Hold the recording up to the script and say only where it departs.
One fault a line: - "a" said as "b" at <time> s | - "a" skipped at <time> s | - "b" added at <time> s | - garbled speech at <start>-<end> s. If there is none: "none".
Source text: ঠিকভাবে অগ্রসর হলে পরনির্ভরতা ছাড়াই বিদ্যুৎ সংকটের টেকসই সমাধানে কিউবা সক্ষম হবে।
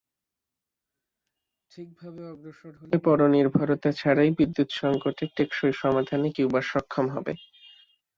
none